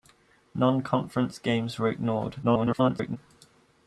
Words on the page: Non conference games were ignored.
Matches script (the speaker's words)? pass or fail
fail